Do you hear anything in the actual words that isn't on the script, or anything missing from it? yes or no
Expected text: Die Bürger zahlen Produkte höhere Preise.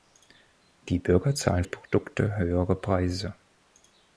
no